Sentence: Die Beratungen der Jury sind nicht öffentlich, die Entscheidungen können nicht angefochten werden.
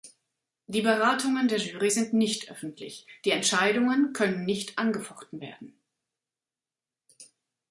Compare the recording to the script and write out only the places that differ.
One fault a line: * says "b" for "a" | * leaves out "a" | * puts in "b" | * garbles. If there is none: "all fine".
all fine